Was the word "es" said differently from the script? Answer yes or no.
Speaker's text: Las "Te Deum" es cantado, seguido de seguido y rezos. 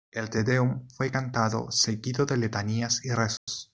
yes